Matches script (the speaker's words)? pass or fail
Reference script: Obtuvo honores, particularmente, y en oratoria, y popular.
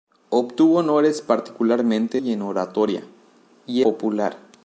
pass